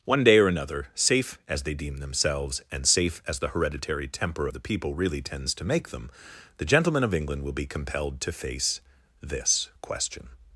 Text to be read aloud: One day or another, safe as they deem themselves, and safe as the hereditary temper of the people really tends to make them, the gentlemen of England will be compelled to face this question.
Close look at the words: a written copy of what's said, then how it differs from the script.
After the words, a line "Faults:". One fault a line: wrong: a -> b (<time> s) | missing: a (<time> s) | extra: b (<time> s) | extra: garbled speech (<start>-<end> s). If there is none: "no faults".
One day or another, safe as they deem themselves, and safe as the hereditary temper the people really tends to make them, the gentlemen of England will be compelled to face this question.
Faults:
missing: of (4.5 s)